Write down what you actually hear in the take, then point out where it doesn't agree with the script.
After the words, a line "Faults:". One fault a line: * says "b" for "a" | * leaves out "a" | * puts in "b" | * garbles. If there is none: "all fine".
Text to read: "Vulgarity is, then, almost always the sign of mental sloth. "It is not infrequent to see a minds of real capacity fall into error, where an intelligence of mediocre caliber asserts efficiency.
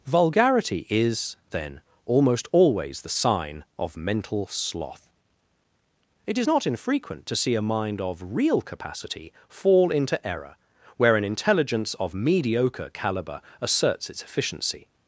"Vulgarity is, then, almost always the sign of mental sloth. "It is not infrequent to see a mind of real capacity fall into error, where an intelligence of mediocre caliber asserts its efficiency.
Faults:
* says "mind" for "minds"
* puts in "its"